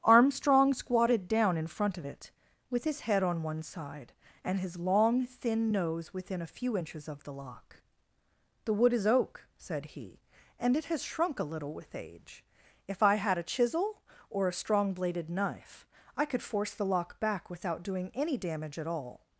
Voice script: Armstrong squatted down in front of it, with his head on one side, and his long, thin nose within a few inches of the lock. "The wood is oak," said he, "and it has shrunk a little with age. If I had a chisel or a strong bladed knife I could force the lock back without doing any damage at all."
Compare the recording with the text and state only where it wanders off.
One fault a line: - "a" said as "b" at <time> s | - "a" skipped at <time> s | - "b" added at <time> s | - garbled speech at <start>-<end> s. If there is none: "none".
none